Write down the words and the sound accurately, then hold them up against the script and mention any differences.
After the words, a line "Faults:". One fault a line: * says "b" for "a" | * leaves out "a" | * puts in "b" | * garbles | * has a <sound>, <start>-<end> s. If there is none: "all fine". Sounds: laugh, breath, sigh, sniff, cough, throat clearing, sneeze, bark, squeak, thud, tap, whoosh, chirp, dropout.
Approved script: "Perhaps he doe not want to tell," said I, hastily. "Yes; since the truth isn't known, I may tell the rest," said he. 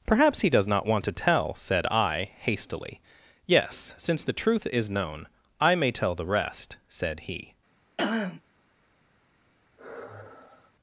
"Perhaps he does not want to tell," said I, hastily. "Yes; since the truth is known, I may tell the rest," said he.
Faults:
* says "does" for "doe"
* says "is" for "isn't"
* has a throat clearing, 8.0-8.4 s
* has a sigh, 9.8-10.7 s